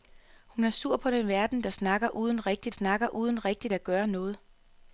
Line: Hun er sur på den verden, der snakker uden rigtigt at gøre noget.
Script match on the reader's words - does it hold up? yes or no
no